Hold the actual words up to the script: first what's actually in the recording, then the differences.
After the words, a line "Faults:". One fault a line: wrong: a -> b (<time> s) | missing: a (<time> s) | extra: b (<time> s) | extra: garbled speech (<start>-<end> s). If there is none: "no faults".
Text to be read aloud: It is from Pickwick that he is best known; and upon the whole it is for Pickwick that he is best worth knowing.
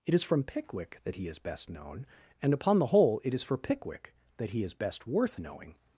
It is from Pickwick that he is best known; and upon the whole it is for Pickwick that he is best worth knowing.
Faults:
no faults